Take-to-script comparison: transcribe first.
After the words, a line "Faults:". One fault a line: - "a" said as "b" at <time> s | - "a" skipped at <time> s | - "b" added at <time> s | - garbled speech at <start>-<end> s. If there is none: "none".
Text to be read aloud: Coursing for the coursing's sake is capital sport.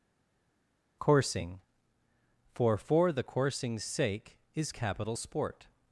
Coursing for for the coursing's sake is capital sport.
Faults:
- "for" added at 2.8 s